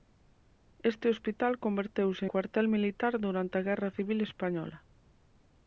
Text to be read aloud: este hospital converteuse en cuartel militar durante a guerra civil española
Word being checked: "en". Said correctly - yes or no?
no